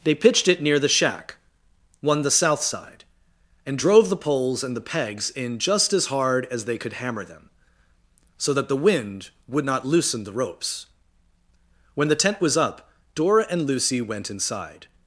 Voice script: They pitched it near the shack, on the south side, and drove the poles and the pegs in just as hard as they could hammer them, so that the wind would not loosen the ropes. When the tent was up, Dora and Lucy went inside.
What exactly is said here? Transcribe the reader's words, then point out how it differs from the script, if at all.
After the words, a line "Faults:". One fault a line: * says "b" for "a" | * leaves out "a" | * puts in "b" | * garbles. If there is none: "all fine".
They pitched it near the shack, one the south side, and drove the poles and the pegs in just as hard as they could hammer them, so that the wind would not loosen the ropes. When the tent was up, Dora and Lucy went inside.
Faults:
* says "one" for "on"